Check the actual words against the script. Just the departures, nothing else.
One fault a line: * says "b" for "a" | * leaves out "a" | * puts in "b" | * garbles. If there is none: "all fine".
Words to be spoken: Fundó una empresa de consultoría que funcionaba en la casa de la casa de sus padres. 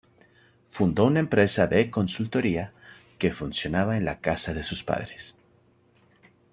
* leaves out "la casa de"